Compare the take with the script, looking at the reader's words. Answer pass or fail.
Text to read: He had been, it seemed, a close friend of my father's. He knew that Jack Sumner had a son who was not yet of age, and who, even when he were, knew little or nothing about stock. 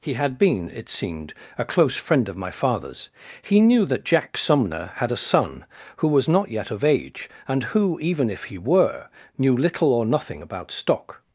fail